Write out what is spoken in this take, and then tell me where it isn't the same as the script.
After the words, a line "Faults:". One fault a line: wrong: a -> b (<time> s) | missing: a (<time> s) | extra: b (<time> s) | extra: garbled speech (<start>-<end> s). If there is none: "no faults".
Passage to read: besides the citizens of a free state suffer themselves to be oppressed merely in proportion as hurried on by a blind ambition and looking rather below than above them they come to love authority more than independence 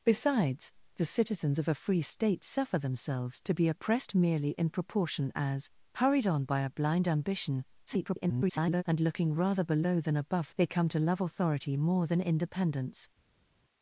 besides the citizens of a free state suffer themselves to be oppressed merely in proportion as hurried on by a blind ambition [garbled] and looking rather below than above they come to love authority more than independence
Faults:
extra: garbled speech (7.9-8.8 s)
missing: them (10.5 s)